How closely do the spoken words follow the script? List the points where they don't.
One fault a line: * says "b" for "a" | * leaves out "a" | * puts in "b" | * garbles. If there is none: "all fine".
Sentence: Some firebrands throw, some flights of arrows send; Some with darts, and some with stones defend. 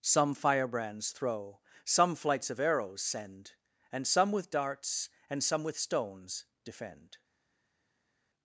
* puts in "And"